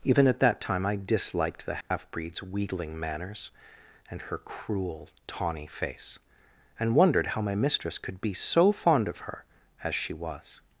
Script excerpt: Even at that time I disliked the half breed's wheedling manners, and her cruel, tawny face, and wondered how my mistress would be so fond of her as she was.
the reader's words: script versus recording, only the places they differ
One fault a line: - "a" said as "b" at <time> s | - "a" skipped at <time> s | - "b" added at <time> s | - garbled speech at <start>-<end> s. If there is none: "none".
- "would" said as "could" at 8.0 s